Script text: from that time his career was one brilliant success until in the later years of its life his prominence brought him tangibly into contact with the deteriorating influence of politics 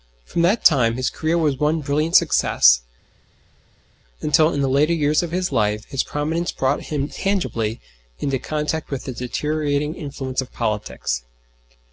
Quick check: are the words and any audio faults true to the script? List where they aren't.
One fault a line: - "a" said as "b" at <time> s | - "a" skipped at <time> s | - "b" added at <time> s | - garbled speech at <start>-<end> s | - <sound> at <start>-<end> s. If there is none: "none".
- "its" said as "his" at 5.3 s